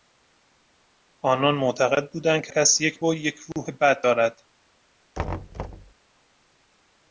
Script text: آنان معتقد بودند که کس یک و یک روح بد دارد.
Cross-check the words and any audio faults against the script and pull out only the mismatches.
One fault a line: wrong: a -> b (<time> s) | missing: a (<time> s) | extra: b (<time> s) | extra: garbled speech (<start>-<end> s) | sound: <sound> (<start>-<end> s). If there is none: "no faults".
sound: thud (5.1-5.9 s)